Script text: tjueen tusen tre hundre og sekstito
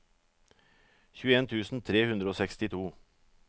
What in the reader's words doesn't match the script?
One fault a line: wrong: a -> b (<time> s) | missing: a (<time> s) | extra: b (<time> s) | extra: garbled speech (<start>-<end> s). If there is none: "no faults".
no faults